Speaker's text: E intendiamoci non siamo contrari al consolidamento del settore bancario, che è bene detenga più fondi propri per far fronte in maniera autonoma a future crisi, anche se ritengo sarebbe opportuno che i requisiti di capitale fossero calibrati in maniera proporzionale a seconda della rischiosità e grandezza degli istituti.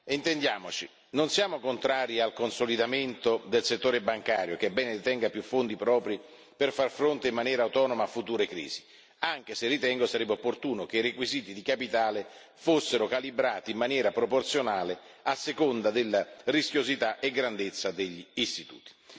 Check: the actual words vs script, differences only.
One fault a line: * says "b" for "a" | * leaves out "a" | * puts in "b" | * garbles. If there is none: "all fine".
all fine